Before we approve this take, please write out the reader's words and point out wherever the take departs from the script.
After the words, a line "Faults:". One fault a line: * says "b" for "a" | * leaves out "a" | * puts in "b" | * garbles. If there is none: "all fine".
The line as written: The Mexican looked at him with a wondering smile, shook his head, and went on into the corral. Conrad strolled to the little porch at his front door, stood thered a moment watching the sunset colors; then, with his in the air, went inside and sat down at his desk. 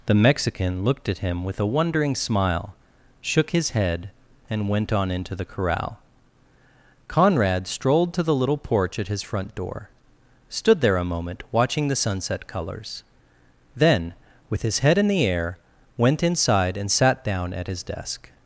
The Mexican looked at him with a wondering smile, shook his head, and went on into the corral. Conrad strolled to the little porch at his front door, stood there a moment watching the sunset colors; then, with his head in the air, went inside and sat down at his desk.
Faults:
* says "there" for "thered"
* puts in "head"